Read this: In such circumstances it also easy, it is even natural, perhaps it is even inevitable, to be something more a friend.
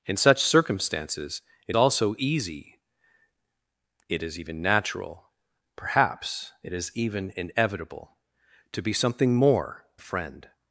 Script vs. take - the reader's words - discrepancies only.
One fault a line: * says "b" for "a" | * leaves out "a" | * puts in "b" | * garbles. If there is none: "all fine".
all fine